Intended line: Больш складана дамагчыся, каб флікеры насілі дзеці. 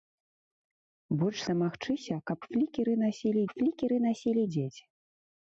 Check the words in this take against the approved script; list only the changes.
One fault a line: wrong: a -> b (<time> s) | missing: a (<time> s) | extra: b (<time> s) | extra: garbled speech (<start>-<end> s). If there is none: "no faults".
missing: складана (1.4 s)
extra: флікеры насілі (3.5 s)